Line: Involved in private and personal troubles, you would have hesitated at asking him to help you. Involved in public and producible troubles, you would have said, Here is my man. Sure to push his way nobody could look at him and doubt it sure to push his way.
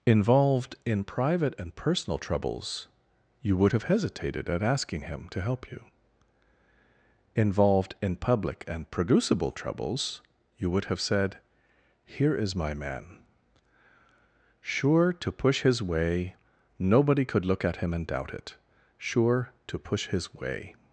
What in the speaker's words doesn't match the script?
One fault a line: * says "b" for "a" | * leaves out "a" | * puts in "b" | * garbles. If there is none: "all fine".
all fine